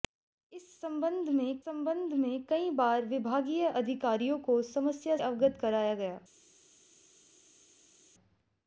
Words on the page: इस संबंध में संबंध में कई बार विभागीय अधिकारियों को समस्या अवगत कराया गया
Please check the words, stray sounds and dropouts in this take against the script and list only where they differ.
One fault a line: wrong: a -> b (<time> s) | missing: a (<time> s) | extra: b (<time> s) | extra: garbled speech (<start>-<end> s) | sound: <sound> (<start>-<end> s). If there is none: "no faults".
no faults